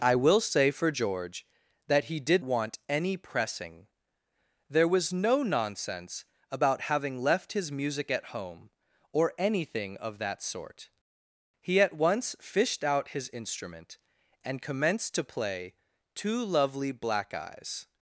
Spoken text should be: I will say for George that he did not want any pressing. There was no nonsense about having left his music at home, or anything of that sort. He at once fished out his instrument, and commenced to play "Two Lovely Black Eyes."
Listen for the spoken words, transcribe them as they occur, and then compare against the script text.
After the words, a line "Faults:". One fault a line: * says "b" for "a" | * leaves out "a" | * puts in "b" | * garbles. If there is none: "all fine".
I will say for George that he did want any pressing. There was no nonsense about having left his music at home, or anything of that sort. He at once fished out his instrument, and commenced to play "Two Lovely Black Eyes."
Faults:
* leaves out "not"